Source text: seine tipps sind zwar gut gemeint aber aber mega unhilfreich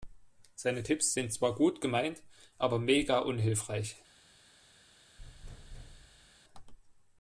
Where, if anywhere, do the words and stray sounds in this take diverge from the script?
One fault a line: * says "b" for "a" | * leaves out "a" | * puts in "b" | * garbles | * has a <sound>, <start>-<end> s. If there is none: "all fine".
* leaves out "aber"
* has a thud, 5.2-6.4 s